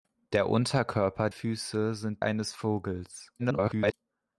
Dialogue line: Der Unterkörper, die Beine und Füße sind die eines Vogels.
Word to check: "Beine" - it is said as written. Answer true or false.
false